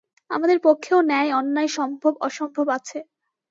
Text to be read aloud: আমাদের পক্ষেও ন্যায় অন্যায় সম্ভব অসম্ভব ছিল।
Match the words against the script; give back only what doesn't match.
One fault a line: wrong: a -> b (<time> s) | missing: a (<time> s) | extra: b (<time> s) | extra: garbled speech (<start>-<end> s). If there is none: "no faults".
wrong: ছিল -> আছে (2.8 s)